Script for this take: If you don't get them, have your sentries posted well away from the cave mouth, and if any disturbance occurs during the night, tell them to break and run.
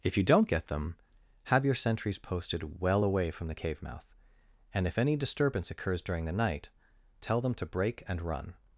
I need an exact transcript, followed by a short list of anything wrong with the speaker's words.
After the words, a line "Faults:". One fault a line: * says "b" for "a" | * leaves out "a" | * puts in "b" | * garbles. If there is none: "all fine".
If you don't get them, have your sentries posted well away from the cave mouth, and if any disturbance occurs during the night, tell them to break and run.
Faults:
all fine